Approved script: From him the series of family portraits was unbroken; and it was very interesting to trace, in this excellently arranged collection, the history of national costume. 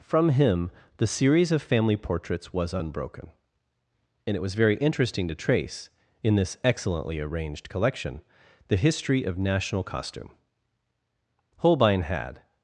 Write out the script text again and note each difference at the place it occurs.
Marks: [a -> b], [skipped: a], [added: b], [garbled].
From him the series of family portraits was unbroken; and it was very interesting to trace, in this excellently arranged collection, the history of national costume. [added: Holbein had]